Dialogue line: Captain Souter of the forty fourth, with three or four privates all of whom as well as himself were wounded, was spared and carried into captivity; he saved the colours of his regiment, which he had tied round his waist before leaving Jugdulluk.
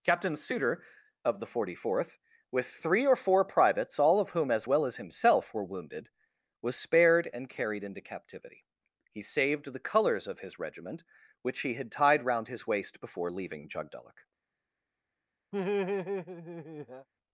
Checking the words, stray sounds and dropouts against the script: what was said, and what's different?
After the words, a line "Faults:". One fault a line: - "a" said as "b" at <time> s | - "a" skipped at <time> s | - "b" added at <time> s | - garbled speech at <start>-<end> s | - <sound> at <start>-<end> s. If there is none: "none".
Captain Souter of the forty fourth, with three or four privates all of whom as well as himself were wounded, was spared and carried into captivity; he saved the colours of his regiment, which he had tied round his waist before leaving Jugdulluk.
Faults:
- laugh at 15.5-17.1 s